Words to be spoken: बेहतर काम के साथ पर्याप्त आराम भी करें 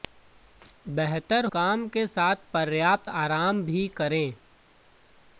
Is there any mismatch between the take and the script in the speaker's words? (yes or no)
no